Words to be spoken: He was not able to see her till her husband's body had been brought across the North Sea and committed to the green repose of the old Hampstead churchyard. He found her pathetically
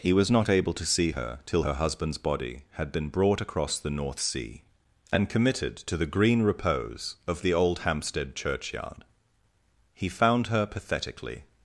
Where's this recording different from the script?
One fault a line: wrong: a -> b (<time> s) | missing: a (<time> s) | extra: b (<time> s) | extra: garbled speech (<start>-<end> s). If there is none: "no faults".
no faults